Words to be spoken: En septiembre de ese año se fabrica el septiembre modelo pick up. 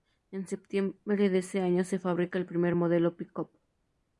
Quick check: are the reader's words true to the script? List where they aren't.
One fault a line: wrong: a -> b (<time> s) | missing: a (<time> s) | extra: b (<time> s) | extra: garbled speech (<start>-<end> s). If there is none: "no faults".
wrong: septiembre -> primer (2.5 s)